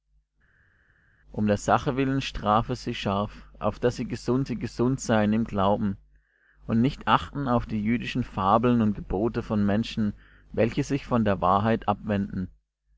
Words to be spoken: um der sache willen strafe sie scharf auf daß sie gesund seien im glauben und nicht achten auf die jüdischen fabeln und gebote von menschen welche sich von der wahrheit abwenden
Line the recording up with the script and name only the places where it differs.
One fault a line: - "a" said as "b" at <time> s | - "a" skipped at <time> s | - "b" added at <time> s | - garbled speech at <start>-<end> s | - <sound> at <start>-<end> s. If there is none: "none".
- "sie gesund" added at 4.5 s